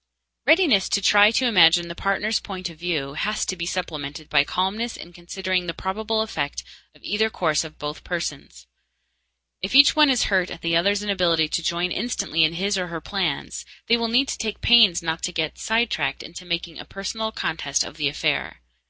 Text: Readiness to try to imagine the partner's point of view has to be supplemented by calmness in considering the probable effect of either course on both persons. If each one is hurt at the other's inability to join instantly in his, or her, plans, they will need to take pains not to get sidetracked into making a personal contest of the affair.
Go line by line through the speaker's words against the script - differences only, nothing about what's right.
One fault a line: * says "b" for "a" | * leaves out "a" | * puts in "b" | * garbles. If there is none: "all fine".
all fine